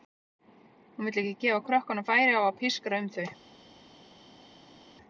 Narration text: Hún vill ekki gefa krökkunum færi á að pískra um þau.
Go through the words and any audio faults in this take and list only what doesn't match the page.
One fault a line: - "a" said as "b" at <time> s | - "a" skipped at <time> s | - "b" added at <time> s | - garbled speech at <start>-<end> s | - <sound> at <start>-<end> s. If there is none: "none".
none